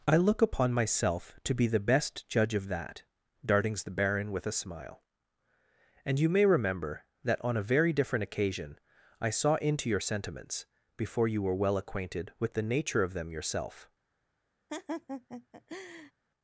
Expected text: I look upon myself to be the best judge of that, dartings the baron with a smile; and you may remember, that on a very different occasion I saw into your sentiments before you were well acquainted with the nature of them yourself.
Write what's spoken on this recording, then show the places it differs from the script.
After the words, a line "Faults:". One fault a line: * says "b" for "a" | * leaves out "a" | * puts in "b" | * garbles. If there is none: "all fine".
I look upon myself to be the best judge of that, dartings the baron with a smile; and you may remember, that on a very different occasion I saw into your sentiments before you were well acquainted with the nature of them yourself.
Faults:
all fine